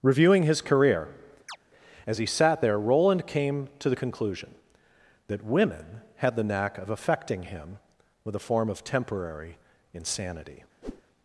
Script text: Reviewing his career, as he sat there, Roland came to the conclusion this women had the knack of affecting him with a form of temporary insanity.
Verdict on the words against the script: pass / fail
fail